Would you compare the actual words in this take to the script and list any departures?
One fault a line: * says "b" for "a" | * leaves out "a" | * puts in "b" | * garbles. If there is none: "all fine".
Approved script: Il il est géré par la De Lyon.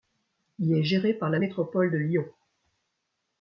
* leaves out "il"
* puts in "Métropole"